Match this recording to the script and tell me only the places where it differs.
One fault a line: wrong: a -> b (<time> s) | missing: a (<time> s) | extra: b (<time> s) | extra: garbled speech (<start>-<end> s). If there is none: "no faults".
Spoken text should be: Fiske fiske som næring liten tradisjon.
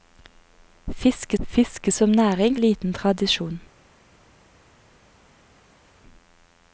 no faults